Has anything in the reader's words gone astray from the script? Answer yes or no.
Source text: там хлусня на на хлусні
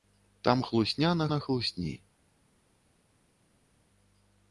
no